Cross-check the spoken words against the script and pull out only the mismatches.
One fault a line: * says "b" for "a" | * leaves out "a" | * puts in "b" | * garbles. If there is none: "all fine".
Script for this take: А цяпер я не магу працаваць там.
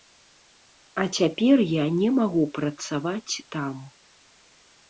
all fine